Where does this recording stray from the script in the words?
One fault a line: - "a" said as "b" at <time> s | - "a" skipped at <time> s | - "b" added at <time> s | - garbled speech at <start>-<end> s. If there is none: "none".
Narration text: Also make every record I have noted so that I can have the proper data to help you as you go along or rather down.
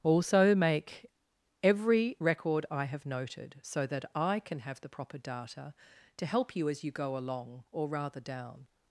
none